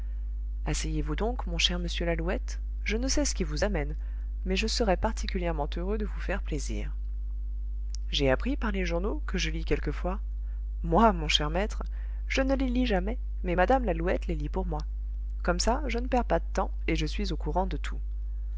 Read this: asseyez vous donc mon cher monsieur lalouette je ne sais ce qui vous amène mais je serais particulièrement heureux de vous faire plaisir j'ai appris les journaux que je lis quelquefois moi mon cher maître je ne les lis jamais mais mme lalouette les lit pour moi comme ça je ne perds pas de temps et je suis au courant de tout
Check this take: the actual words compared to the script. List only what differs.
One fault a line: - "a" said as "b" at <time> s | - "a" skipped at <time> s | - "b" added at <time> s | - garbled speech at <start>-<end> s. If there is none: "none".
- "par" added at 8.5 s